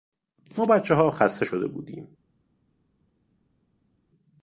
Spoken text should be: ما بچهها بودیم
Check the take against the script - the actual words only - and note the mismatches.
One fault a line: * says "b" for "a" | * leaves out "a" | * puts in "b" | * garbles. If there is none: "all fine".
* puts in "خسته شده"